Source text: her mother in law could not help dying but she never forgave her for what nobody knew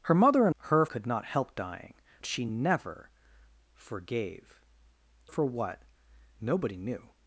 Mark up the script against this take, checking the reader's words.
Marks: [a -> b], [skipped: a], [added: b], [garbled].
her mother in [law -> her] could not help dying [skipped: but] she never forgave [skipped: her] for what nobody knew